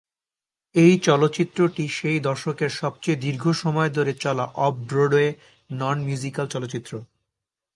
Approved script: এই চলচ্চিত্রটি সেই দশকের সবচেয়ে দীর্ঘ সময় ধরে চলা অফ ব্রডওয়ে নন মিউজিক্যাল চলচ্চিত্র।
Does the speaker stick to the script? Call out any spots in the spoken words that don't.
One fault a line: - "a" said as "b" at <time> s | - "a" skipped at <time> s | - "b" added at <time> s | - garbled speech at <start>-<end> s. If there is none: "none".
none